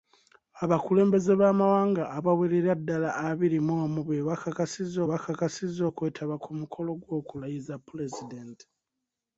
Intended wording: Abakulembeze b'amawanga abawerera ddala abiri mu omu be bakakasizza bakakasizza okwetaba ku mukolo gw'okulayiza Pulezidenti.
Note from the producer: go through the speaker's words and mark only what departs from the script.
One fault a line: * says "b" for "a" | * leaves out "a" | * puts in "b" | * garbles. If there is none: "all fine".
all fine